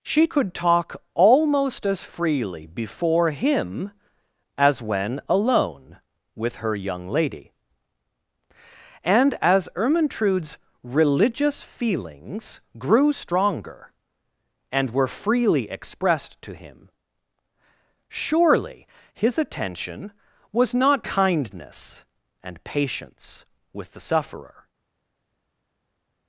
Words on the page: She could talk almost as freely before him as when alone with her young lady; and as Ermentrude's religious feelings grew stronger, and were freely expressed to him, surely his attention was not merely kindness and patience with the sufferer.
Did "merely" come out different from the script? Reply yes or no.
yes